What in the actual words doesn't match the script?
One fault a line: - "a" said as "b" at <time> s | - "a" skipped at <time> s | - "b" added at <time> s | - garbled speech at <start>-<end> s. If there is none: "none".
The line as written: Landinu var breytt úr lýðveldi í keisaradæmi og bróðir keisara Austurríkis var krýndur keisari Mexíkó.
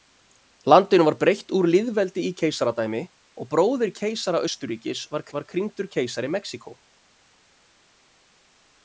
- "var" added at 5.4 s